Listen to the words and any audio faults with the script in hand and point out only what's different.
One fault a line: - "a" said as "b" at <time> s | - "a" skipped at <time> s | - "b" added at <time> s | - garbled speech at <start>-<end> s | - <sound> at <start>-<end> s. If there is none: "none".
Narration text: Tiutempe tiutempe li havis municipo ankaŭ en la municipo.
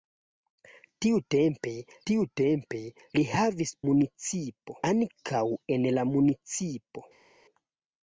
none